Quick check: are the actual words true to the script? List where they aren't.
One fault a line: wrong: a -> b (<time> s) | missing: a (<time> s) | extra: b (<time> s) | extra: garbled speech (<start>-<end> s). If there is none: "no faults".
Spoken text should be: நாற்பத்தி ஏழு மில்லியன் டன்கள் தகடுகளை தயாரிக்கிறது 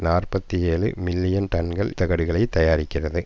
no faults